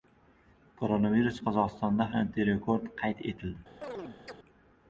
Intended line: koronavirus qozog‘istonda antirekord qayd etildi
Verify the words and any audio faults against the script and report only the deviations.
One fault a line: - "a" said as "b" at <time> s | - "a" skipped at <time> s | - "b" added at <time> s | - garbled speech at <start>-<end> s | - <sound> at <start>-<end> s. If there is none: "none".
- chirp at 3.8-4.4 s